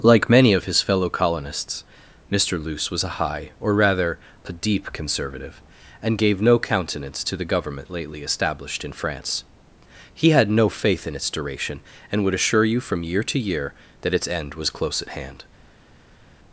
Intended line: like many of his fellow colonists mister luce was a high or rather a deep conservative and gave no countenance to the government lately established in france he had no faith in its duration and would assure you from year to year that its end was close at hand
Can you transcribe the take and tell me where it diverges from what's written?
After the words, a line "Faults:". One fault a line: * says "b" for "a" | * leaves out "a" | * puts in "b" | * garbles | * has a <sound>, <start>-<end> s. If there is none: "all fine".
like many of his fellow colonists mister luce was a high or rather a deep conservative and gave no countenance to the government lately established in france he had no faith in its duration and would assure you from year to year that its end was close at hand
Faults:
all fine